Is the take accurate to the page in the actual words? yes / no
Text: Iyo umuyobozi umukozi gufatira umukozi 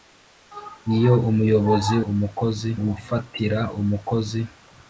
yes